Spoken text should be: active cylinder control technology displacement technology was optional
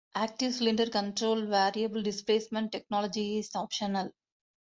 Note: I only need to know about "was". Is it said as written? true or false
false